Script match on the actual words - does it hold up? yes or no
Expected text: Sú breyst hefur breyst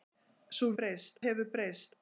yes